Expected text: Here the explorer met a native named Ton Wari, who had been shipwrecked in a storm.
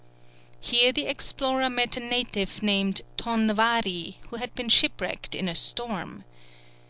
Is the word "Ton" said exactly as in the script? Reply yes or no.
yes